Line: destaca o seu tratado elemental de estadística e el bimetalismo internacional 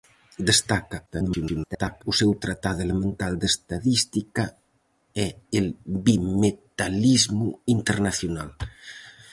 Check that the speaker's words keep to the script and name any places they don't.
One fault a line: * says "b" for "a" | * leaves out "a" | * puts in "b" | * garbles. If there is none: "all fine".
* garbles